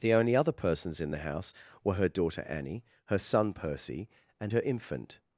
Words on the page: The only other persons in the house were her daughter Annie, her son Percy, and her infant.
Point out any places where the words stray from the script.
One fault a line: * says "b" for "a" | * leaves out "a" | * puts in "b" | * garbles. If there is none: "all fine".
all fine